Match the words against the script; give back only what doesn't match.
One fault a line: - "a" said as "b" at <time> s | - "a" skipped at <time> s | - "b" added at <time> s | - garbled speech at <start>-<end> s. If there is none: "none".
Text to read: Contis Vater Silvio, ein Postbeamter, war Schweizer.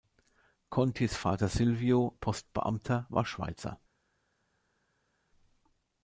- "ein" skipped at 2.2 s